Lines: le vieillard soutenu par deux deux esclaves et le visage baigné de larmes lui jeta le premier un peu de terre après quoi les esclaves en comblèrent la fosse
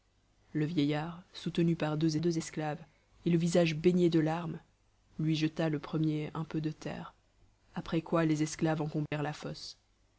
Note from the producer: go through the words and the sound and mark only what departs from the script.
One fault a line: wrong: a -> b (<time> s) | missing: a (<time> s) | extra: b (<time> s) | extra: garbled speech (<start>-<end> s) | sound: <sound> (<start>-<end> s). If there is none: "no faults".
sound: dropout (9.1-9.1 s)